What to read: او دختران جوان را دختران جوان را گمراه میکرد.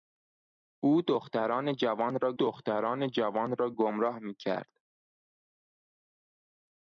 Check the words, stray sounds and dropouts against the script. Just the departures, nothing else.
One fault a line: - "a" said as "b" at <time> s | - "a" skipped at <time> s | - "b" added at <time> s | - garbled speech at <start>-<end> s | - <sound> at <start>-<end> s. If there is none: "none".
none